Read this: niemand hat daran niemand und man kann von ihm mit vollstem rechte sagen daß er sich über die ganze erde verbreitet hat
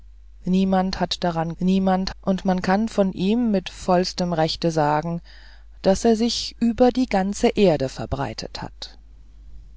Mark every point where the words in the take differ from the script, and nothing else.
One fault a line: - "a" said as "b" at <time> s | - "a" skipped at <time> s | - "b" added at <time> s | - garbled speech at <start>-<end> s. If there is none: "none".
none